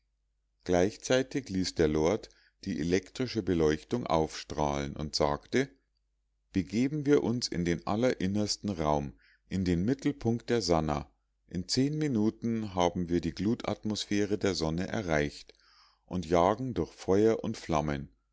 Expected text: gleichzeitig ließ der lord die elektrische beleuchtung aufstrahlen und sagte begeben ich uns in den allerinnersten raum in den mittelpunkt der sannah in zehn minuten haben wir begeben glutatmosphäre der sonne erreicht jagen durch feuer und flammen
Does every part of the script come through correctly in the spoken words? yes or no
no